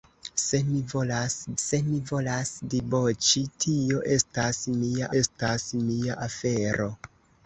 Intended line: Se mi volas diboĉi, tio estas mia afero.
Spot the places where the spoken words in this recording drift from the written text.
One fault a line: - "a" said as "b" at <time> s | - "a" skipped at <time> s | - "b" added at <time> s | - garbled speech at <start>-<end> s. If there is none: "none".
- "se mi volas" added at 1.6 s
- "estas mia" added at 5.2 s